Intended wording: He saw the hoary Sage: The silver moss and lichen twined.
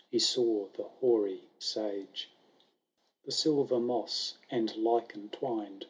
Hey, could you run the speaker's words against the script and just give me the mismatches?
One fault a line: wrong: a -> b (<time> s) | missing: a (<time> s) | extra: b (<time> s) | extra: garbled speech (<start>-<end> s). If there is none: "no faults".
no faults